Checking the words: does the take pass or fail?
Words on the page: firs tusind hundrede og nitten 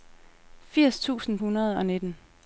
pass